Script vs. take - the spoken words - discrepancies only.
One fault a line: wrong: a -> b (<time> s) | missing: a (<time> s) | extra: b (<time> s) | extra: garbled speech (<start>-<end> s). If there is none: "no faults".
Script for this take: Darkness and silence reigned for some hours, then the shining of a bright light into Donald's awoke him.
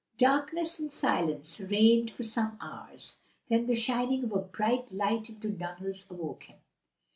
no faults